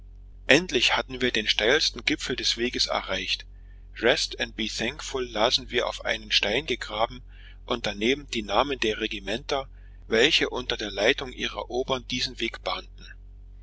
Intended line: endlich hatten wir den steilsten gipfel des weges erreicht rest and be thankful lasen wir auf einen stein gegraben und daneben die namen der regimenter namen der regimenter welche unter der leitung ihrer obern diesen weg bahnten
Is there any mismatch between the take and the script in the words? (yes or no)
yes